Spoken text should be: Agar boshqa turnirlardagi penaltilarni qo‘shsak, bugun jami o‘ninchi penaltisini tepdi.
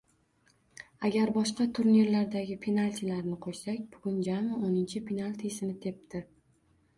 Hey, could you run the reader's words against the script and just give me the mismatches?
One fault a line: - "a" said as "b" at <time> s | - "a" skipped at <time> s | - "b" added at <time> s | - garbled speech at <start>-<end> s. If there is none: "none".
none